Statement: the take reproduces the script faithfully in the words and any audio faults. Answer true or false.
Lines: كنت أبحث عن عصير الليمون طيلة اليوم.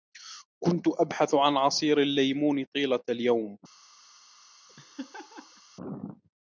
false